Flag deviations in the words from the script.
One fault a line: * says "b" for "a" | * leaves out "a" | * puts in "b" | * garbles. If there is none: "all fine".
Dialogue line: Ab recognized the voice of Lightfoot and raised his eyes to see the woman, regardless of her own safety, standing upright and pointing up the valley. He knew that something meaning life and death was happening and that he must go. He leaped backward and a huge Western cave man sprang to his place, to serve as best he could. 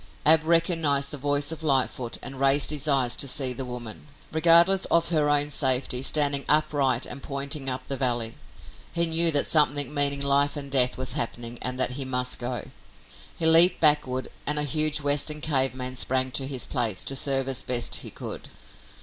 all fine